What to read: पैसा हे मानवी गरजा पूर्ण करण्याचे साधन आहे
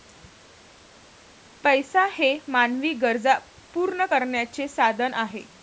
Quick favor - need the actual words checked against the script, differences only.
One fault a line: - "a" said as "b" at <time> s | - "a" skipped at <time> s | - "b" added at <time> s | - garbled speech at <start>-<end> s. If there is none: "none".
none